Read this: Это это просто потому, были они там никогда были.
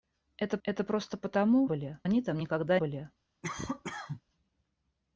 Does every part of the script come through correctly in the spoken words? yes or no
yes